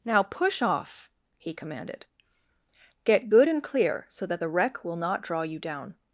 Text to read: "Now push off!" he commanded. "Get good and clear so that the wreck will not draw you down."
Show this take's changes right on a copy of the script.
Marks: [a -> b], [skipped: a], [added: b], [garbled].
"Now push off!" he commanded. "Get good and clear so that the wreck will not draw you down."